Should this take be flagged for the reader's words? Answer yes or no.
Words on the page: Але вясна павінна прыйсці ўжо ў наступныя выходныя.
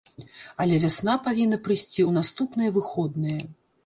yes